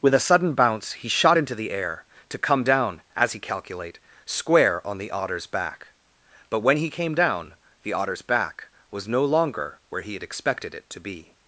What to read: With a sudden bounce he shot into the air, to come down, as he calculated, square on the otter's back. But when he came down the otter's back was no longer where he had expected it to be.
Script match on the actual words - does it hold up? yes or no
no